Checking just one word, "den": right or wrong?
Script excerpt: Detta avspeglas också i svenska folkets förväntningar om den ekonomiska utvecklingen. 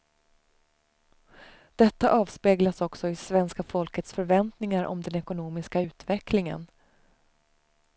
right